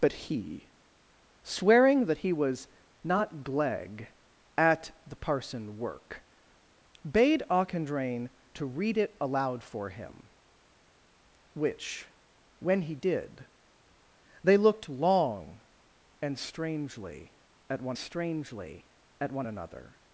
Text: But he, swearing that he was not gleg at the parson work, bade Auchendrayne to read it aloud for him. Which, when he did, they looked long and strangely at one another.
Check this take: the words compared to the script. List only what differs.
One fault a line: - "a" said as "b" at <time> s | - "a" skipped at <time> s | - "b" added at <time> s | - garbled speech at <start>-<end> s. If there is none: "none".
- "strangely at one" added at 18.0 s